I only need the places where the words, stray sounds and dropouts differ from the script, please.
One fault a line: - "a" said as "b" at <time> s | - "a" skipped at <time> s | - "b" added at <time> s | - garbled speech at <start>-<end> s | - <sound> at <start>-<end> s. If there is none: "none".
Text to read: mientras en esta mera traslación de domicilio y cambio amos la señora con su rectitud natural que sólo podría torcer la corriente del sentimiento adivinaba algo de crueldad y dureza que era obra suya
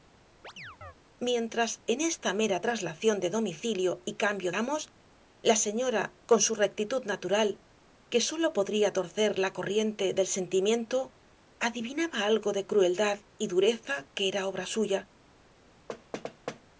- chirp at 0.4-0.9 s
- thud at 15.9-16.6 s